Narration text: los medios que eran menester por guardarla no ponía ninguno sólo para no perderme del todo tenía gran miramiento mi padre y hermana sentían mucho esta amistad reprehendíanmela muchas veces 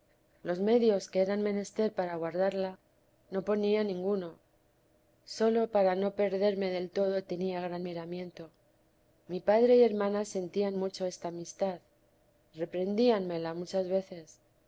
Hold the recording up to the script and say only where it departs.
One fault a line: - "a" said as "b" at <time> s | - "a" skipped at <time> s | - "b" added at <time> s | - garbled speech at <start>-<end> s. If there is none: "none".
- "por" said as "para" at 1.9 s